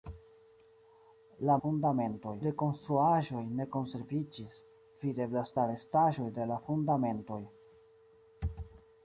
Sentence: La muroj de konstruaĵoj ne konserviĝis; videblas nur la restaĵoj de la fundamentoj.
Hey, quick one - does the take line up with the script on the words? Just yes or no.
no